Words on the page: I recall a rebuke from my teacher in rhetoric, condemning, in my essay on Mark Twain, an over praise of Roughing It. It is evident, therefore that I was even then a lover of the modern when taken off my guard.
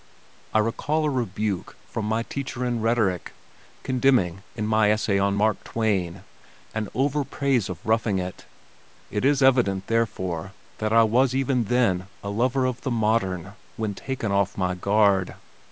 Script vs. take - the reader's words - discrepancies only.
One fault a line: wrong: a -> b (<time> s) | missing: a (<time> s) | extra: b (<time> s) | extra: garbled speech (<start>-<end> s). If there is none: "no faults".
no faults